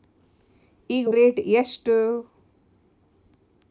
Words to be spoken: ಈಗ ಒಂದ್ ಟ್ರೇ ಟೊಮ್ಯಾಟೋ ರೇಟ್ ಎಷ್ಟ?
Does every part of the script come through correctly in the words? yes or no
no